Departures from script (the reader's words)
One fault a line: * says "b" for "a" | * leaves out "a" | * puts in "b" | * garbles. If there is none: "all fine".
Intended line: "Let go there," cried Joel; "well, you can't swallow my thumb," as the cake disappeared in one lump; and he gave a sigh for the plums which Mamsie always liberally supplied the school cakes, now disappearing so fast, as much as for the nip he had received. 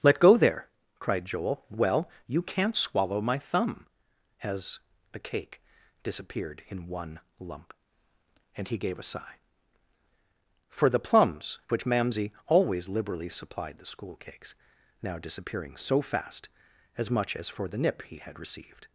all fine